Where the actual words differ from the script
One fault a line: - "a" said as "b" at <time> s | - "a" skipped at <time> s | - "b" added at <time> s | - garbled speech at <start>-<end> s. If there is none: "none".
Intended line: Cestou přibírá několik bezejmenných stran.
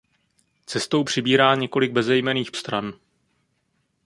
none